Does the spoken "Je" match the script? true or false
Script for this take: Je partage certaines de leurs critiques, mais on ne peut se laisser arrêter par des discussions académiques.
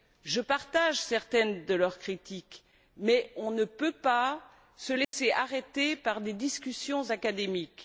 true